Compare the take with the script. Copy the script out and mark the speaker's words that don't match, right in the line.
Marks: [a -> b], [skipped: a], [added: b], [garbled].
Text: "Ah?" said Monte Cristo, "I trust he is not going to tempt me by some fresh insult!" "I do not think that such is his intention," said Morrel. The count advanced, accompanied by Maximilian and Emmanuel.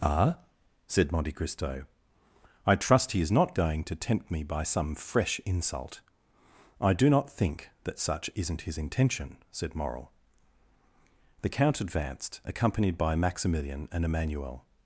"Ah?" said Monte Cristo, "I trust he is not going to tempt me by some fresh insult!" "I do not think that such [is -> isn't] his intention," said Morrel. The count advanced, accompanied by Maximilian and Emmanuel.